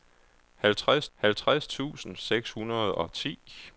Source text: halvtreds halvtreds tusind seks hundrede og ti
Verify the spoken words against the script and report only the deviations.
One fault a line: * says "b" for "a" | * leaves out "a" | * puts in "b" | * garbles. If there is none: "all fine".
all fine